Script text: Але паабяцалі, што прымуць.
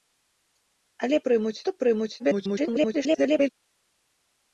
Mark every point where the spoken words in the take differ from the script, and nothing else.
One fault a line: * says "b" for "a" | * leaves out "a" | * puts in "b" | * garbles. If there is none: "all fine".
* says "прымуць" for "паабяцалі"
* garbles